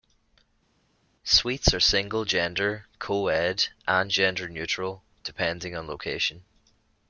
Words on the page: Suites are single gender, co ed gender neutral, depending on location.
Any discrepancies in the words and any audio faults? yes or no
yes